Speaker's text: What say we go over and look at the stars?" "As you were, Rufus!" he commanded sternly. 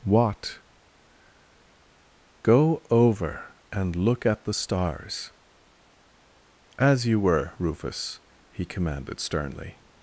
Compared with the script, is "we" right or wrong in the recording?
wrong